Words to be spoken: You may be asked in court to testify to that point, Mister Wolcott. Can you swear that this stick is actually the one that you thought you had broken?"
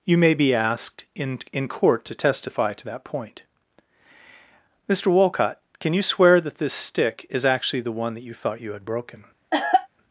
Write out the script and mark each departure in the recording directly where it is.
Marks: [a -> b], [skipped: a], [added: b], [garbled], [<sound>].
You may be asked in [added: in] court to testify to that point, Mister Wolcott. Can you swear that this stick is actually the one that you thought you had broken?" [cough]